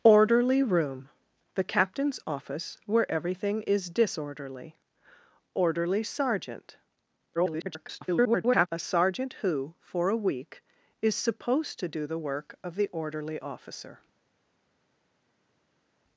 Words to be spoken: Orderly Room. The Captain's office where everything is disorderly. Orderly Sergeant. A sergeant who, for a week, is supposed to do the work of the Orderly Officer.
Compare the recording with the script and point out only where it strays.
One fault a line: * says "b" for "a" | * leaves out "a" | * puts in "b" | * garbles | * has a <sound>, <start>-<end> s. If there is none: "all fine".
* garbles